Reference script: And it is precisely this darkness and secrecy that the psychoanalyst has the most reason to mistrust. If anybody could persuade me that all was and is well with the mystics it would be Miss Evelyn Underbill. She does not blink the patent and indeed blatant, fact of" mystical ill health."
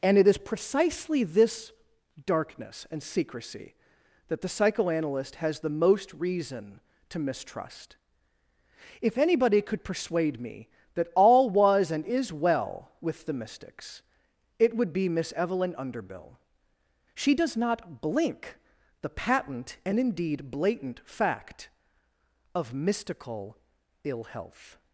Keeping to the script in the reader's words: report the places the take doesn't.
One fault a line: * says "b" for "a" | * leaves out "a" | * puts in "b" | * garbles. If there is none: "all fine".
all fine